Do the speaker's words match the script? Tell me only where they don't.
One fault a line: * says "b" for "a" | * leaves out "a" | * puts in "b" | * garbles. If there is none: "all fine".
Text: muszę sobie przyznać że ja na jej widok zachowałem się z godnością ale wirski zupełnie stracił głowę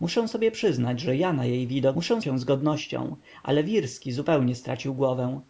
* says "muszę" for "zachowałem"